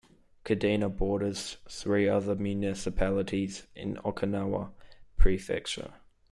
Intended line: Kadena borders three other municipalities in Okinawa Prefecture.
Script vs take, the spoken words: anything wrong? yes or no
no